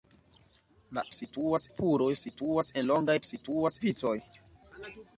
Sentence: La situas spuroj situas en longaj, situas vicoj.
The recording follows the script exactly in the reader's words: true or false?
true